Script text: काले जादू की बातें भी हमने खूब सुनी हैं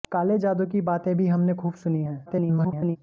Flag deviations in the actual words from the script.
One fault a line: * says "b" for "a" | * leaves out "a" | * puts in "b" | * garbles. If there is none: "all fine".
* garbles